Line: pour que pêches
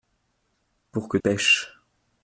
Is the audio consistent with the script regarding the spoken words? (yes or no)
yes